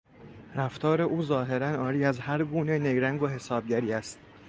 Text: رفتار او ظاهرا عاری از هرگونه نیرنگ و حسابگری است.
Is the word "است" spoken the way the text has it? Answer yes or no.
yes